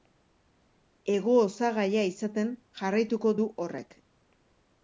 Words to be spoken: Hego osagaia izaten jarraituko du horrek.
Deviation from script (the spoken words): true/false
false